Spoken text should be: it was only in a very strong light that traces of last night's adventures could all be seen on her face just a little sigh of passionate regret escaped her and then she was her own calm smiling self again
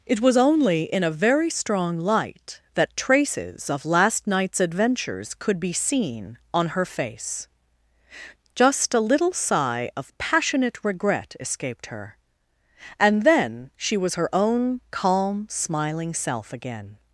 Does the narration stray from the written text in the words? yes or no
yes